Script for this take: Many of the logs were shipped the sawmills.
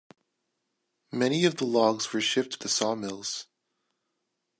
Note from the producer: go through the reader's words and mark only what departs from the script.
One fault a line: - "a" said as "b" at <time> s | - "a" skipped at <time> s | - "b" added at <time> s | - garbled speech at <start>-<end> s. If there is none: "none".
none